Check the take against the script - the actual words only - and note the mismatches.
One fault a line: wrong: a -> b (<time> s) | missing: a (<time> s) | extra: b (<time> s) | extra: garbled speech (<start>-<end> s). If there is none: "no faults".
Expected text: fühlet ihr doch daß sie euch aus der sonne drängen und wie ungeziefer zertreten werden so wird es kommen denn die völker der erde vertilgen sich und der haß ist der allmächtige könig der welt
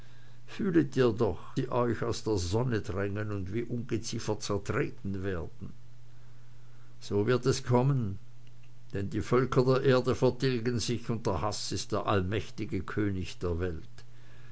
missing: daß (1.4 s)